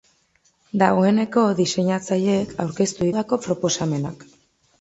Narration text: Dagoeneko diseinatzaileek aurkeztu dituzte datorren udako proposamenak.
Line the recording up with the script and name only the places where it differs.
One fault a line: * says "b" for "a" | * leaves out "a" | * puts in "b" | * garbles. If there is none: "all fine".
* leaves out "dituzte datorren"